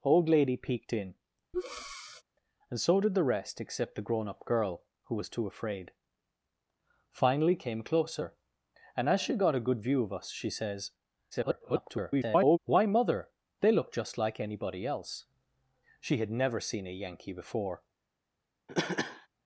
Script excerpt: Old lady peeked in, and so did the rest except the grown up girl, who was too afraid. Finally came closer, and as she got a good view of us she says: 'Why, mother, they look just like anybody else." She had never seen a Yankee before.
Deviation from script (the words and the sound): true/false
true